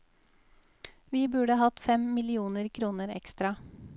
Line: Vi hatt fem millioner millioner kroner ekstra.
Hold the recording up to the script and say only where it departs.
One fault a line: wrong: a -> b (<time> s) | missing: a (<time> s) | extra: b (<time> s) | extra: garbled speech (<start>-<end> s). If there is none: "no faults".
extra: burde (1.2 s)
missing: millioner (2.7 s)